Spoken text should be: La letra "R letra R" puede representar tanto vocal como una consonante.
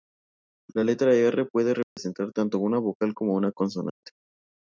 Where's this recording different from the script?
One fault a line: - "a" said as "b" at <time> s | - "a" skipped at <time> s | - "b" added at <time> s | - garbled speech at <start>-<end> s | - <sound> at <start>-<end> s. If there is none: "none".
- "letra R" skipped at 1.5 s
- dropout at 1.8-2.0 s
- "una" added at 2.6 s
- dropout at 3.9-4.0 s